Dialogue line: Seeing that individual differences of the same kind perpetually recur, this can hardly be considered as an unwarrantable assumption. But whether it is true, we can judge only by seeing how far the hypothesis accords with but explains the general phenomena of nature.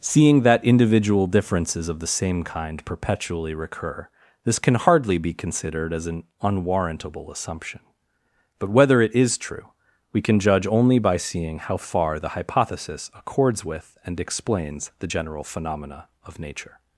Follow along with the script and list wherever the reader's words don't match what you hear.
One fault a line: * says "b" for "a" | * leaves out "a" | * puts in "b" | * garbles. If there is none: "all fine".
* says "and" for "but"